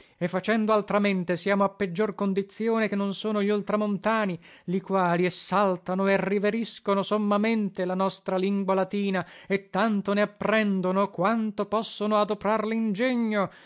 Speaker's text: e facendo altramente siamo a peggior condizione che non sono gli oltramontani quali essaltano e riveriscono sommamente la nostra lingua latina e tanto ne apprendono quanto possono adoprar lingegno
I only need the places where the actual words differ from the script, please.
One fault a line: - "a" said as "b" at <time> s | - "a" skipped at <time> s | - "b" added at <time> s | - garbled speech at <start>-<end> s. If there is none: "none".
- "li" added at 4.6 s